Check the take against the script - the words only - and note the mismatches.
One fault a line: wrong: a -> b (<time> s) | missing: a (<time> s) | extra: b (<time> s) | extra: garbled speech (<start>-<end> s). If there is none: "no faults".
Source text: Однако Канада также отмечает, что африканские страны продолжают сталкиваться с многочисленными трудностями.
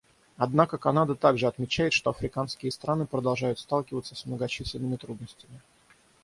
no faults